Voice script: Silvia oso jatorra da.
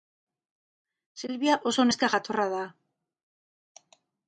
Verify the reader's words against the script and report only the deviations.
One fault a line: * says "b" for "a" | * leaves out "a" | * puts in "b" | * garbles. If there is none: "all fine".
* puts in "neska"